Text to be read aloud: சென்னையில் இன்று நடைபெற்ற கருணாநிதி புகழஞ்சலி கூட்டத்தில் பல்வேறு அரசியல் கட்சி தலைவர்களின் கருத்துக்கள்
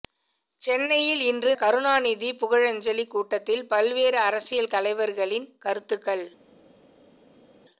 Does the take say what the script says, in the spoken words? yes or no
no